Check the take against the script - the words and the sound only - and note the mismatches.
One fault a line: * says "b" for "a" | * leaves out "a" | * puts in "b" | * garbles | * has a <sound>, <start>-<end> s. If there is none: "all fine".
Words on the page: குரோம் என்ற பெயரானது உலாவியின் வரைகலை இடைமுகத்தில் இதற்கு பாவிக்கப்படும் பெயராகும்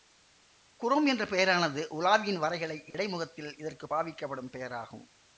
* has a dropout, 2.9-2.9 s